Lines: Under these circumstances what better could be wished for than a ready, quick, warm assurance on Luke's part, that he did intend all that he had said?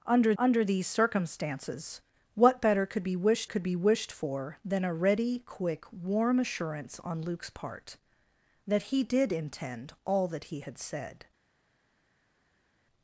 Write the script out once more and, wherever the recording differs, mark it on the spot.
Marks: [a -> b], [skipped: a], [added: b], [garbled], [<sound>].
Under [added: under] these circumstances what better could be wished [added: could be wished] for than a ready, quick, warm assurance on Luke's part, that he did intend all that he had said?